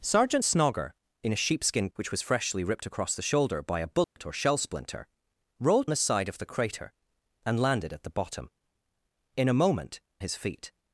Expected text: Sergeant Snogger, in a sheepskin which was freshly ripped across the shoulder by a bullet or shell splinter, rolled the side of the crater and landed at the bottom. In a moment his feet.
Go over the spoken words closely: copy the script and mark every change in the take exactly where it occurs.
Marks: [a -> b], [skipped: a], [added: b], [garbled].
Sergeant Snogger, in a sheepskin which was freshly ripped across the shoulder by a bullet or shell splinter, rolled the side of the crater and landed at the bottom. In a moment his feet.